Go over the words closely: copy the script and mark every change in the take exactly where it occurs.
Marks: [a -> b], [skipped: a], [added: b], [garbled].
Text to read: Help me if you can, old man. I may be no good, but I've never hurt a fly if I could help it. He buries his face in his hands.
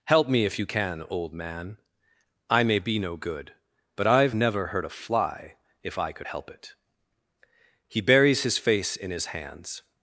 Help me if you can, old man. I may be no good, but I've never hurt a fly if I could help it. He buries his face in his hands.